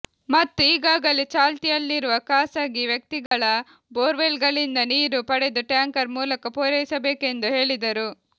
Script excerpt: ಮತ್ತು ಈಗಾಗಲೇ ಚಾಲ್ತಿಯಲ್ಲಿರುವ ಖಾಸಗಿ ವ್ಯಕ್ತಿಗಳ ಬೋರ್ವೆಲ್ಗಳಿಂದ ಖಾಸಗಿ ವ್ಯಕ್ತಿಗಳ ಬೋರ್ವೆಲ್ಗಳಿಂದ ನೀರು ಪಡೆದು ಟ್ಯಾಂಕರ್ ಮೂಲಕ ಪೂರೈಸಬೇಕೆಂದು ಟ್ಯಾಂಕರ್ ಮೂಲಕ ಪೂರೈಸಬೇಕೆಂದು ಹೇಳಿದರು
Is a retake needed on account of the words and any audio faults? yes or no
yes